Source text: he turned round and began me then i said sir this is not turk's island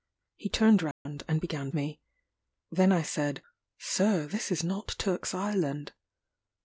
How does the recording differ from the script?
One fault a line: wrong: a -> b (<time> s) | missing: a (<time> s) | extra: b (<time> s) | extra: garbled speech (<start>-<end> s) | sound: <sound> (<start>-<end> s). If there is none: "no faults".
sound: dropout (0.9-1.1 s)